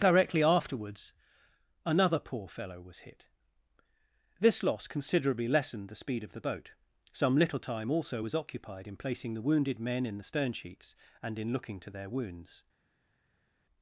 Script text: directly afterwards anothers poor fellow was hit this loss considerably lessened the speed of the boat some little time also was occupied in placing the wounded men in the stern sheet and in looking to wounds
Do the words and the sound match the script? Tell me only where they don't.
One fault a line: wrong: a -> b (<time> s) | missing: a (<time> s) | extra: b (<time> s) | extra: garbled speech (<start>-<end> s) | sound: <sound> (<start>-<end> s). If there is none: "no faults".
wrong: anothers -> another (1.9 s)
wrong: sheet -> sheets (10.5 s)
extra: their (11.9 s)